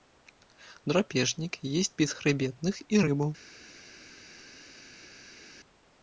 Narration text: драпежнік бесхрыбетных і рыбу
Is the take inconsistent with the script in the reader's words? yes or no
yes